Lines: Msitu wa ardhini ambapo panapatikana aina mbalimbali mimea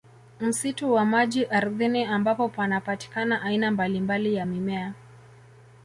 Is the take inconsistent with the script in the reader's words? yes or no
yes